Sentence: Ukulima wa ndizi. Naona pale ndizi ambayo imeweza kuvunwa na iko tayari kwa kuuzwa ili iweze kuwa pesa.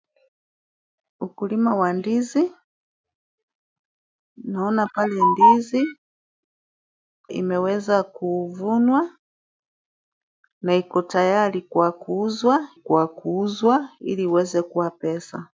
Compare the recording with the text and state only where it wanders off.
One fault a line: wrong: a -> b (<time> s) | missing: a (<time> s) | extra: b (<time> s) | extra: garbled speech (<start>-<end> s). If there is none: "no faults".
missing: ambayo (5.8 s)
extra: kwa kuuzwa (12.7 s)